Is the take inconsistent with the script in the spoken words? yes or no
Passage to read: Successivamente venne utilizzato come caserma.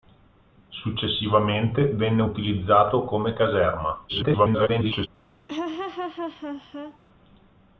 yes